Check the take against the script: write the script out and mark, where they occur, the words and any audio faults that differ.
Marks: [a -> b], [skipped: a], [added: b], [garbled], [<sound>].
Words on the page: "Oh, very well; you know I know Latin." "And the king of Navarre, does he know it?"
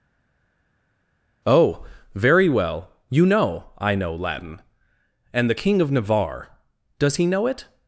"Oh, very well; you know I know Latin." "And the king of Navarre, does he know it?"